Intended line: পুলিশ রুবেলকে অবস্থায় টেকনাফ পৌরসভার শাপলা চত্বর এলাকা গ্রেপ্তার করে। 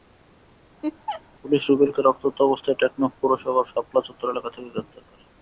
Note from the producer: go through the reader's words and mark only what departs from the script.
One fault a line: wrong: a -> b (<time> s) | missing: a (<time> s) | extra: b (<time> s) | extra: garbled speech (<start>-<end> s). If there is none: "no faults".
extra: রক্তাক্ত (2.0 s)
extra: থেকে (4.5 s)